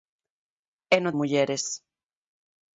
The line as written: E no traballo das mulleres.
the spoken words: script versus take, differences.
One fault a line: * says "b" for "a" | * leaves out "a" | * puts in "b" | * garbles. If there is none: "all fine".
* leaves out "traballo das"